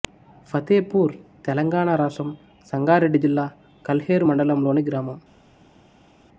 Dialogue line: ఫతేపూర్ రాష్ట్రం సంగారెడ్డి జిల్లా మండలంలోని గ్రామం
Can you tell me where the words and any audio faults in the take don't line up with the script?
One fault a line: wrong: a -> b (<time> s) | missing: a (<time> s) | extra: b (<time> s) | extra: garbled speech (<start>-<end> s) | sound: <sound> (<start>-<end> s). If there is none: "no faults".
extra: తెలంగాణ (1.4 s)
extra: కల్హేరు (3.9 s)